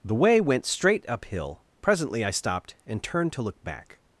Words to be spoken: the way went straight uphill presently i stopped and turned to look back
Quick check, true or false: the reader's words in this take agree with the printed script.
true